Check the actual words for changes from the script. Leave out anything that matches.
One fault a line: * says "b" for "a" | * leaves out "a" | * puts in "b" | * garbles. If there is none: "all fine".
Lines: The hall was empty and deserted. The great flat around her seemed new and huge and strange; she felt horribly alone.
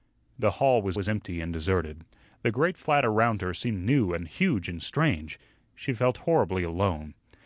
* puts in "was"